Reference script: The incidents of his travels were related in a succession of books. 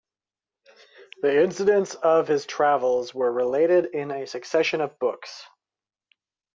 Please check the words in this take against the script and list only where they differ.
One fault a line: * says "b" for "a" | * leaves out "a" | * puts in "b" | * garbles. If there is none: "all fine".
all fine